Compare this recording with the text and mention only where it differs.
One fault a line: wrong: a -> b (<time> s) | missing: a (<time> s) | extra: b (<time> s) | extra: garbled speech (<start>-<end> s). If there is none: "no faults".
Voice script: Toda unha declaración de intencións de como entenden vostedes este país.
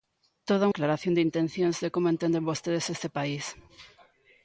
missing: unha (0.7 s)